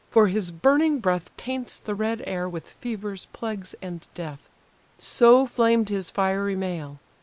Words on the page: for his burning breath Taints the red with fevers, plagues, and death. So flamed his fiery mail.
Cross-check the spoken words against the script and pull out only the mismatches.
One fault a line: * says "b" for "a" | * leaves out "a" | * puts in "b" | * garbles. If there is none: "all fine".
* puts in "air"